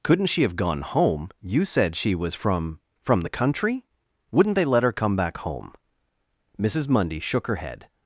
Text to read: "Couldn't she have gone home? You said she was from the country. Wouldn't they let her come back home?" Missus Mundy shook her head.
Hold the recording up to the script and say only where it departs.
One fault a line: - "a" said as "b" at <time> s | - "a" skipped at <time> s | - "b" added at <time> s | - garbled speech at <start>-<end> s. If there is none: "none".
- "from" added at 3.0 s